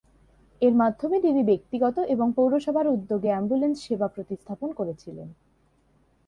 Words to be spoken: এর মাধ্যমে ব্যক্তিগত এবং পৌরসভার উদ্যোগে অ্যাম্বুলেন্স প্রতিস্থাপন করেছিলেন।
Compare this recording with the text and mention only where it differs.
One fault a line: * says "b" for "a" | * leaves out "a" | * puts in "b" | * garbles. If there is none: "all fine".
* puts in "তিনি"
* puts in "সেবা"